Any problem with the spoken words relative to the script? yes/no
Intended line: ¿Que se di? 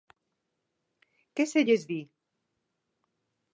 yes